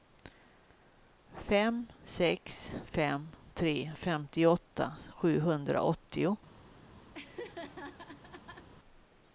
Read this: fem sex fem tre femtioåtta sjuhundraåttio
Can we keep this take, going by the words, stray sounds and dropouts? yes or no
no